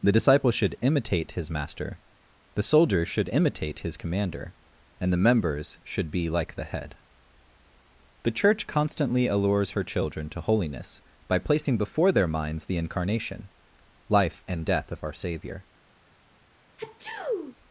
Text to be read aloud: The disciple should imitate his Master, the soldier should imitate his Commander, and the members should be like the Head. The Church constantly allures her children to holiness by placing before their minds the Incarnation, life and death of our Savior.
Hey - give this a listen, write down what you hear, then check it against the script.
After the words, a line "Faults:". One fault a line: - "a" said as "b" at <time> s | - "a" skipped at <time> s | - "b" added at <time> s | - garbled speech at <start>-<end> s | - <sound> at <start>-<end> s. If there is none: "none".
The disciple should imitate his Master, the soldier should imitate his Commander, and the members should be like the Head. The Church constantly allures her children to holiness by placing before their minds the Incarnation, life and death of our Savior.
Faults:
- sneeze at 16.8-17.6 s